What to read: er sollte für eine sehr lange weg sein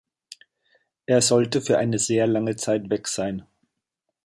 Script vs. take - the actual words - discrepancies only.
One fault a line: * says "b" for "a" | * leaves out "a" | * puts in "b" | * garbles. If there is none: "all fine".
* puts in "zeit"